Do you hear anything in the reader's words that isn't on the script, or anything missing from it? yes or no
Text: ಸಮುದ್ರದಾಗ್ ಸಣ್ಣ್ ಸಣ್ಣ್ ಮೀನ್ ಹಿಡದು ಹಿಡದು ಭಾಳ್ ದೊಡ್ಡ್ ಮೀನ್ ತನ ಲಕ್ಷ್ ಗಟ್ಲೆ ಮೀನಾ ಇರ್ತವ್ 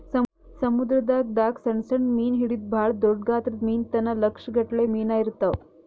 yes